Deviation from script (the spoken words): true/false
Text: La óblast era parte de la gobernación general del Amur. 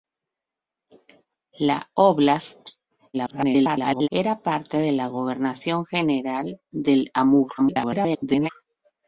true